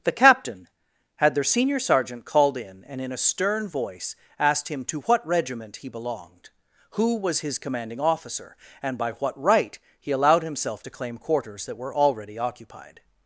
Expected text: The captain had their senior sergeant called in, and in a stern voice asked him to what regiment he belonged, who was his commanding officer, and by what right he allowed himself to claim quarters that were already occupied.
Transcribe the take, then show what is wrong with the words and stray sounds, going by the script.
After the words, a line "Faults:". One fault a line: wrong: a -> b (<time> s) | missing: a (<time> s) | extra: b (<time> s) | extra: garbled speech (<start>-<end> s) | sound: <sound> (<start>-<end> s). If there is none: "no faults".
The captain had their senior sergeant called in, and in a stern voice asked him to what regiment he belonged, who was his commanding officer, and by what right he allowed himself to claim quarters that were already occupied.
Faults:
no faults